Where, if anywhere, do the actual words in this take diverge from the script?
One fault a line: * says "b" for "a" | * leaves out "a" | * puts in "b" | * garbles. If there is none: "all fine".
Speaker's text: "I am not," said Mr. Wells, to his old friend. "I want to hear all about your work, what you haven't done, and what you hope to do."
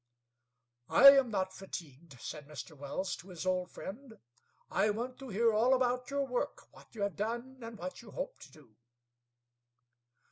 * puts in "fatigued"
* says "have" for "haven't"